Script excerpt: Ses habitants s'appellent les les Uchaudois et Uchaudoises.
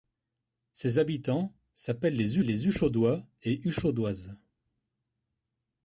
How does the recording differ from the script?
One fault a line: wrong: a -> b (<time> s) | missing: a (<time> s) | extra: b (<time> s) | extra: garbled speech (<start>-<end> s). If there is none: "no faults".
no faults